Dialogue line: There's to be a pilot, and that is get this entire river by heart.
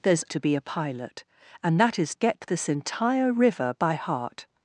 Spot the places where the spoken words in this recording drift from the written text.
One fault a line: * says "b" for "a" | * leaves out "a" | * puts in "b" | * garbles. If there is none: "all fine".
all fine